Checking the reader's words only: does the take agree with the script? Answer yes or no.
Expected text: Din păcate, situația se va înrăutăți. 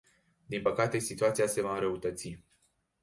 yes